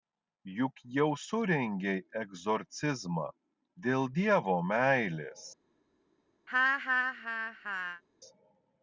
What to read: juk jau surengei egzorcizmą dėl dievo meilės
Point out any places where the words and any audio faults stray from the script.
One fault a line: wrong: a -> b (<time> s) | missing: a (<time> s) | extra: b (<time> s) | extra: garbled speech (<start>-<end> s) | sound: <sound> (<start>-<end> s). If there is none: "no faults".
sound: laugh (6.5-8.0 s)